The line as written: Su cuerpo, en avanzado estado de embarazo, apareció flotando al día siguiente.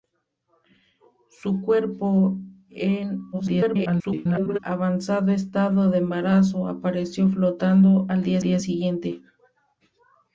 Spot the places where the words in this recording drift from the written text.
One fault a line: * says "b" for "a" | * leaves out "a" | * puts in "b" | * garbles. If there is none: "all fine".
* garbles
* puts in "día"